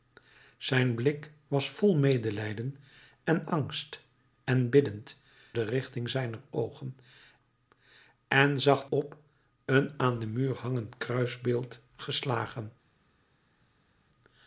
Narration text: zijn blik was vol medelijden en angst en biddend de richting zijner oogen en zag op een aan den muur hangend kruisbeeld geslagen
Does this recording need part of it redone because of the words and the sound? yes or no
no